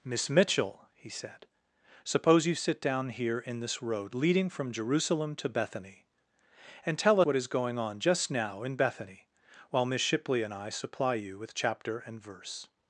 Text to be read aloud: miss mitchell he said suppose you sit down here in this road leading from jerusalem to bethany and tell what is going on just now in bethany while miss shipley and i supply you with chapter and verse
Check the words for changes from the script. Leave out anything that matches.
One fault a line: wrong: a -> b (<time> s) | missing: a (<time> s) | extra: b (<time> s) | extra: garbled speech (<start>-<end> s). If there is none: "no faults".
no faults